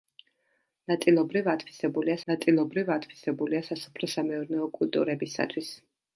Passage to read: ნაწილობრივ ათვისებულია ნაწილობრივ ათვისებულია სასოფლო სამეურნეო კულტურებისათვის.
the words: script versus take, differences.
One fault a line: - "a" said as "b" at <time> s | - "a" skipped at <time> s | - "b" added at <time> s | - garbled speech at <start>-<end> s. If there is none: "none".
none